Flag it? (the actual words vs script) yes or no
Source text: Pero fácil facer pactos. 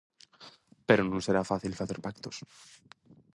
yes